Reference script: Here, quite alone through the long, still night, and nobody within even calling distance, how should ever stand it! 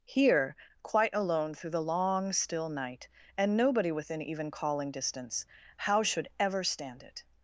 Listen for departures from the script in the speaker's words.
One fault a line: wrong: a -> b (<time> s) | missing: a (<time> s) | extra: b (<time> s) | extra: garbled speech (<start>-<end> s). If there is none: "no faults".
no faults